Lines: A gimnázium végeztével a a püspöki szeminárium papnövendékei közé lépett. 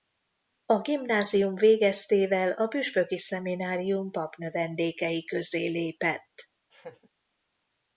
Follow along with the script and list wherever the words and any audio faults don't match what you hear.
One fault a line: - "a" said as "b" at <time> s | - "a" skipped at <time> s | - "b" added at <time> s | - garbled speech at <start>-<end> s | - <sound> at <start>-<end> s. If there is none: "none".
- "a" skipped at 2.7 s
- laugh at 6.7-7.1 s